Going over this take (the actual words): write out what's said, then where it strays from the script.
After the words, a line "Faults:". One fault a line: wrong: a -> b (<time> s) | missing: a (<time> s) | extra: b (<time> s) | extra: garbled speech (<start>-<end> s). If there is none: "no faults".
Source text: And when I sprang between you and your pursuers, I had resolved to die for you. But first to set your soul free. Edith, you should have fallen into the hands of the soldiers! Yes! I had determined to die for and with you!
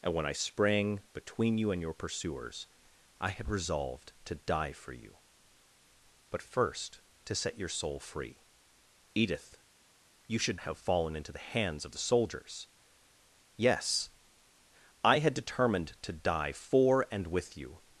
And when I sprang between you and your pursuers, I had resolved to die for you. But first to set your soul free. Edith, you should have fallen into the hands of the soldiers! Yes! I had determined to die for and with you!
Faults:
no faults